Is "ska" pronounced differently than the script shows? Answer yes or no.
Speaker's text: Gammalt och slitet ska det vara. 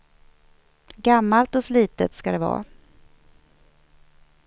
no